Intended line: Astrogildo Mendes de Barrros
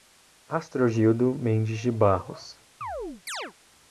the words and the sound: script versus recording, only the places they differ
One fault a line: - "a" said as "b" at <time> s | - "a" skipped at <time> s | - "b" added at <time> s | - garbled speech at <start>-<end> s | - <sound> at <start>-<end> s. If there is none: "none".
- chirp at 2.8-3.5 s